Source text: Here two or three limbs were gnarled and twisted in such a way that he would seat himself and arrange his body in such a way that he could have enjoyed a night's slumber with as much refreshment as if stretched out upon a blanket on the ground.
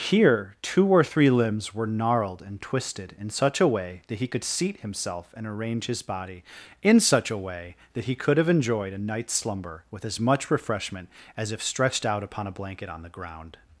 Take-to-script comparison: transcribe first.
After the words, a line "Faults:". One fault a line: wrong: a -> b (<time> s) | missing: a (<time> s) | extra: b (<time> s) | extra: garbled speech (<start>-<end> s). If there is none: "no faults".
Here two or three limbs were gnarled and twisted in such a way that he could seat himself and arrange his body in such a way that he could have enjoyed a night's slumber with as much refreshment as if stretched out upon a blanket on the ground.
Faults:
wrong: would -> could (4.2 s)